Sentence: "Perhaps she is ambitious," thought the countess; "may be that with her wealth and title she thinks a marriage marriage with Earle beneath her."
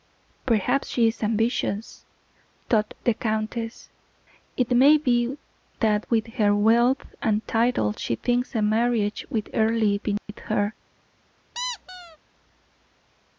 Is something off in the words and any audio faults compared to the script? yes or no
yes